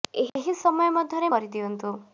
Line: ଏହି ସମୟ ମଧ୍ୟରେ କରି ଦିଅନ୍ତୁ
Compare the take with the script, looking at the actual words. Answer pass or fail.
pass